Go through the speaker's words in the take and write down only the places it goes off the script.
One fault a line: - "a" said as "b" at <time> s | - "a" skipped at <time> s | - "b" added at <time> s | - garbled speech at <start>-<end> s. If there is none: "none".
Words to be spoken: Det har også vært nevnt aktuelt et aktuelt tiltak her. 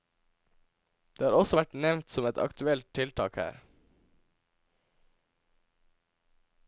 - "aktuelt" said as "som" at 2.1 s